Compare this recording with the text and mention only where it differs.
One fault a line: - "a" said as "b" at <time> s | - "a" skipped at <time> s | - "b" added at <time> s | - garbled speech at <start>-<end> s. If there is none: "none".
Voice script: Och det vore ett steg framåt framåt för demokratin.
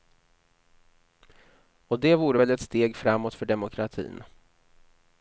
- "väl" added at 2.4 s
- "framåt" skipped at 3.3 s